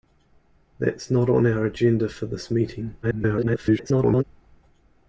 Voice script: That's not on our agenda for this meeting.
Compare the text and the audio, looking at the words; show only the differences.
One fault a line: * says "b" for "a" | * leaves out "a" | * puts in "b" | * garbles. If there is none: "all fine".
* garbles